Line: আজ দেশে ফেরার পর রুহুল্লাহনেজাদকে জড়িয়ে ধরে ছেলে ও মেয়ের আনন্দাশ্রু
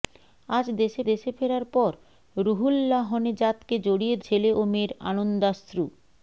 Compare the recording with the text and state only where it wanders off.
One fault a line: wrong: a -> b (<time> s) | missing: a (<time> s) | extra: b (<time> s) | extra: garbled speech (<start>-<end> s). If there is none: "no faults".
extra: দেশে (1.1 s)
missing: ধরে (4.1 s)